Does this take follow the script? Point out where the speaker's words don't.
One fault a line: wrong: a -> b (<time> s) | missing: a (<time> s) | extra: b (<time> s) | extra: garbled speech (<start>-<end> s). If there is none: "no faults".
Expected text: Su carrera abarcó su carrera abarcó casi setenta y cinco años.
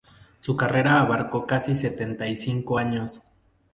missing: su carrera abarcó (1.5 s)